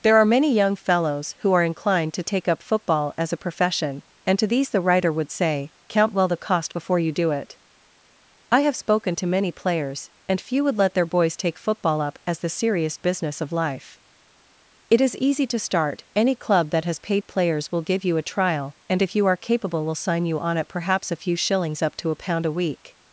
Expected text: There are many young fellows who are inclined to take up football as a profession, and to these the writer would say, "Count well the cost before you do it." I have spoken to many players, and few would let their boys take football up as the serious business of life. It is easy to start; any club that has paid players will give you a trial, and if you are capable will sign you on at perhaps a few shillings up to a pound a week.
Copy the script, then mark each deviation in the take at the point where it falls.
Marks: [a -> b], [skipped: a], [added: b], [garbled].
There are many young fellows who are inclined to take up football as a profession, and to these the writer would say, "Count well the cost before you do it." I have spoken to many players, and few would let their boys take football up as the serious business of life. It is easy to start; any club that has paid players will give you a trial, and if you are capable will sign you on at perhaps a few shillings up to a pound a week.